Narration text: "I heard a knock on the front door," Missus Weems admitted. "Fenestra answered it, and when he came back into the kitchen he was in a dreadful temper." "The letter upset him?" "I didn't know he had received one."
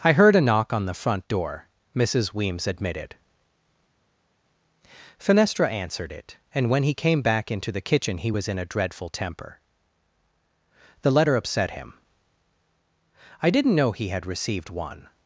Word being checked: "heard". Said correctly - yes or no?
yes